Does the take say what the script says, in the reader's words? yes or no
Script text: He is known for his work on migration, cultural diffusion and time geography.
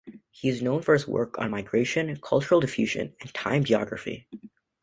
yes